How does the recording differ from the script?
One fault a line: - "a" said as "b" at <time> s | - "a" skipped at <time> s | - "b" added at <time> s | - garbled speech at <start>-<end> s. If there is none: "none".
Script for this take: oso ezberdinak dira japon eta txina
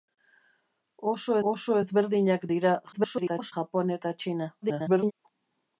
- "oso" added at 1.5 s
- garbled speech at 2.9-3.5 s
- garbled speech at 4.6-5.1 s